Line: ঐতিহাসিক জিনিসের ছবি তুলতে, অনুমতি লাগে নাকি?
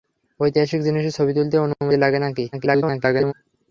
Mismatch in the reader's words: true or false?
true